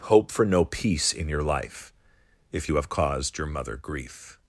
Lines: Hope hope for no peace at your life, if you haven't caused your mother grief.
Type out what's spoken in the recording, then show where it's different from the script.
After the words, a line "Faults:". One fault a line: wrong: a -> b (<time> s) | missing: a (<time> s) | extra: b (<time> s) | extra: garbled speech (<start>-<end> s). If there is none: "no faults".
Hope for no peace in your life, if you have caused your mother grief.
Faults:
missing: hope (0.3 s)
wrong: at -> in (1.1 s)
wrong: haven't -> have (2.8 s)